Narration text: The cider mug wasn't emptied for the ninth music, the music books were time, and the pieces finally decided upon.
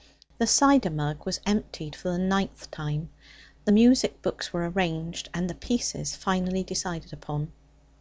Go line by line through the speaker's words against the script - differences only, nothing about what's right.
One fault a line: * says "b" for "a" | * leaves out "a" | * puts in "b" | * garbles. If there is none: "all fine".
* says "was" for "wasn't"
* says "time" for "music"
* says "arranged" for "time"